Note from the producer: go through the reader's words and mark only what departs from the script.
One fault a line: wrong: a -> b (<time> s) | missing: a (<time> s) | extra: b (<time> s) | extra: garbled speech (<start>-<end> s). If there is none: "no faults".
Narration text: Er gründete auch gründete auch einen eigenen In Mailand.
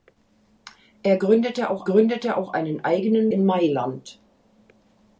no faults